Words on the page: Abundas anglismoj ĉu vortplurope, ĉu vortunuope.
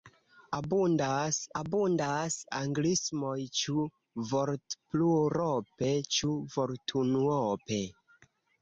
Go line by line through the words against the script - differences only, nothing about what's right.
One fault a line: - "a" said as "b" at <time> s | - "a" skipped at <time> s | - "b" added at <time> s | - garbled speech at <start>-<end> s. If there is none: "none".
- "abundas" added at 1.6 s